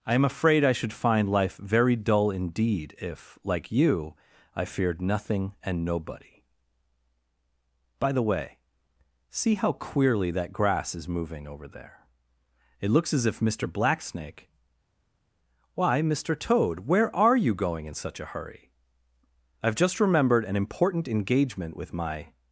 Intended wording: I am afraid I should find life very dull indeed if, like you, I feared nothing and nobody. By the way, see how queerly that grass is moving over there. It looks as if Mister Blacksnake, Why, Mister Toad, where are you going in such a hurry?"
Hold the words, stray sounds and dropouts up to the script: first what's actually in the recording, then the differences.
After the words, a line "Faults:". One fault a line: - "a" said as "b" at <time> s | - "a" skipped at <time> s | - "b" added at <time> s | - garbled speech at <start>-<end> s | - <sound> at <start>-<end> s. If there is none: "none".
I am afraid I should find life very dull indeed if, like you, I feared nothing and nobody. By the way, see how queerly that grass is moving over there. It looks as if Mister Blacksnake, Why, Mister Toad, where are you going in such a hurry?" "I've just remembered an important engagement with my
Faults:
- "I've just remembered an important engagement with my" added at 19.6 s